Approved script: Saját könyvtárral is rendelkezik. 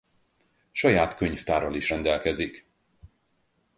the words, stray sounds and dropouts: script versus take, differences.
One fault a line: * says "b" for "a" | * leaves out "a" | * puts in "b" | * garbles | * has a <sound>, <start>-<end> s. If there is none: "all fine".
all fine